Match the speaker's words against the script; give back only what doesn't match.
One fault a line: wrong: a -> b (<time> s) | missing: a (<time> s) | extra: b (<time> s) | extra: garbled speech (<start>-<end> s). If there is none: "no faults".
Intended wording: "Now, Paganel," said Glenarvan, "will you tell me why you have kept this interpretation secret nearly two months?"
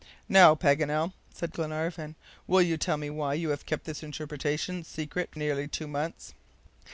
no faults